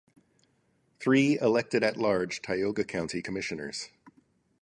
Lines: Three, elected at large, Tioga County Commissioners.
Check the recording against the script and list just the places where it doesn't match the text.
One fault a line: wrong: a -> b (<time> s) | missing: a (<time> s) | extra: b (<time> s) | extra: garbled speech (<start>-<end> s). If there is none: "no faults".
no faults